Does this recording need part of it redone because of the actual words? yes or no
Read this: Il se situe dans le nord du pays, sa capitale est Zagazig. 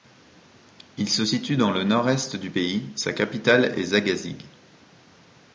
yes